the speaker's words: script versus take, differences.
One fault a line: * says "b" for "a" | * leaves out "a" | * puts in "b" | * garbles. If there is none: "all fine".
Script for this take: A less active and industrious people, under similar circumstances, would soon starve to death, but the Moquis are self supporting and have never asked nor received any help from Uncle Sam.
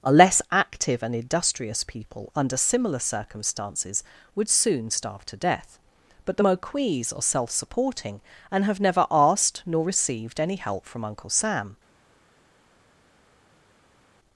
all fine